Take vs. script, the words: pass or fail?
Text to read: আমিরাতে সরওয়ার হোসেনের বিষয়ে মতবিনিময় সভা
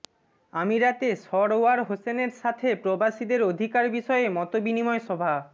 fail